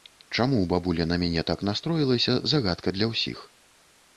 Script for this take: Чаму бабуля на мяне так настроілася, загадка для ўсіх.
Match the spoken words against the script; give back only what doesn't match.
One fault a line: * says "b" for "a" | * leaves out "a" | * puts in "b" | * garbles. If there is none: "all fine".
all fine